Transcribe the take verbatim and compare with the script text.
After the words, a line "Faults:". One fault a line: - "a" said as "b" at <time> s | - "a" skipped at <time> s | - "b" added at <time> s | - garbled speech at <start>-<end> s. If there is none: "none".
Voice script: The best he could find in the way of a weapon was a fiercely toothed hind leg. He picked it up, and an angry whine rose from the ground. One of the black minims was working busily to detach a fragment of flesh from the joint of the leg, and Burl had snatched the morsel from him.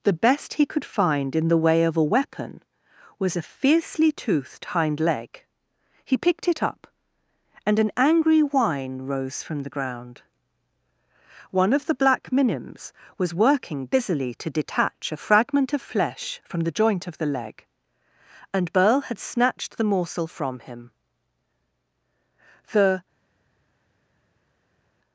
The best he could find in the way of a weapon was a fiercely toothed hind leg. He picked it up, and an angry whine rose from the ground. One of the black minims was working busily to detach a fragment of flesh from the joint of the leg, and Burl had snatched the morsel from him. The
Faults:
- "The" added at 22.7 s